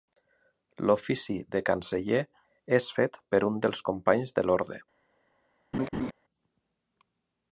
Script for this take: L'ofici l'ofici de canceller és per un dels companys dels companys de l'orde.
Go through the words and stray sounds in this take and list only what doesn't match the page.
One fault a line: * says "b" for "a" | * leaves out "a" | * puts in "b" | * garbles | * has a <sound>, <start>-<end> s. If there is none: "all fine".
* leaves out "l'ofici"
* puts in "fet"
* leaves out "dels companys"
* has a laugh, 5.7-6.1 s